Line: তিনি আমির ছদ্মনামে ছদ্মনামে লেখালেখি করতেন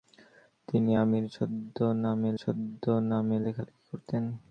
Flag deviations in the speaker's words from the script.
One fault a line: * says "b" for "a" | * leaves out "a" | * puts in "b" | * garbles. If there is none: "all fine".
all fine